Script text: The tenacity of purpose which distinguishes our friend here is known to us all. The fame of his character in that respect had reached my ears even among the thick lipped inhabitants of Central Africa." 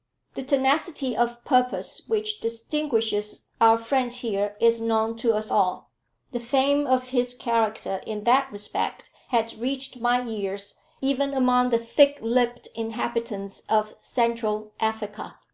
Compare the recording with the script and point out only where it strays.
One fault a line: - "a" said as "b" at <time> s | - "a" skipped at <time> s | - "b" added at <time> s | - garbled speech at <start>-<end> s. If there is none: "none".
none